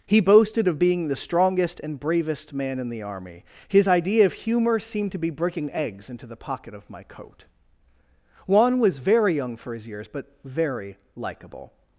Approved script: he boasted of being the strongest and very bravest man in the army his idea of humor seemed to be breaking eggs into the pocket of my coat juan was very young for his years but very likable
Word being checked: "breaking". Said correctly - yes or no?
yes